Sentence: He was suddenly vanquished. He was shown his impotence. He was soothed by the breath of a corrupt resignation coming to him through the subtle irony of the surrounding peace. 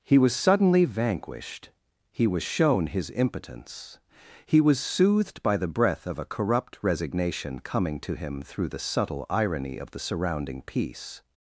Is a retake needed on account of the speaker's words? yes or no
no